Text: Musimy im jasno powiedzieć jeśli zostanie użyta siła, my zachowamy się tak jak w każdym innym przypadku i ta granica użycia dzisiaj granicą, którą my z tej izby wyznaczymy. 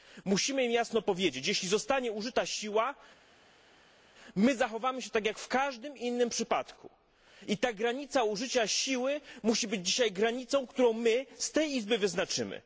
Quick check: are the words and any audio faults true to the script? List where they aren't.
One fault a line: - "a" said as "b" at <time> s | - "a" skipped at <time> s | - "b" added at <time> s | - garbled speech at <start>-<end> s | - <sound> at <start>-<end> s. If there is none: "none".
- "siły musi być" added at 8.7 s